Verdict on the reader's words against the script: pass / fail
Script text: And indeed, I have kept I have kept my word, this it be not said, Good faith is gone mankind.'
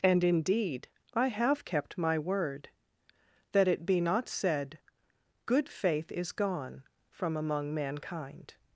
fail